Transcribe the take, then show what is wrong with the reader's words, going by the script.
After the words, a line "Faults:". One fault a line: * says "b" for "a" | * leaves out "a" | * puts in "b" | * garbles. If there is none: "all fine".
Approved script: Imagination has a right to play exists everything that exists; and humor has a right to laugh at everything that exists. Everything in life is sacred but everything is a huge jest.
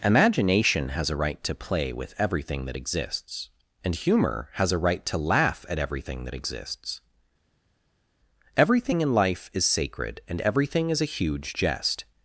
Imagination has a right to play with everything that exists; and humor has a right to laugh at everything that exists. Everything in life is sacred and everything is a huge jest.
Faults:
* says "with" for "exists"
* says "and" for "but"